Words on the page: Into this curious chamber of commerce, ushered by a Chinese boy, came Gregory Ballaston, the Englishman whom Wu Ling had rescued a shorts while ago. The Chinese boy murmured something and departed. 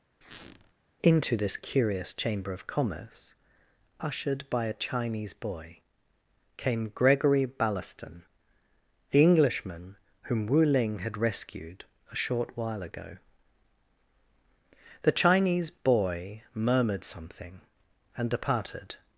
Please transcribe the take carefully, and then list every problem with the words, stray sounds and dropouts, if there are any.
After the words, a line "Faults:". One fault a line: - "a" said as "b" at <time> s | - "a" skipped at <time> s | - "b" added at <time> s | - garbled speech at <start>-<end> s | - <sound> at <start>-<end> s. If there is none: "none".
Into this curious chamber of commerce, ushered by a Chinese boy, came Gregory Ballaston, the Englishman whom Wu Ling had rescued a short while ago. The Chinese boy murmured something and departed.
Faults:
- squeak at 0.2-0.7 s
- "shorts" said as "short" at 12.1 s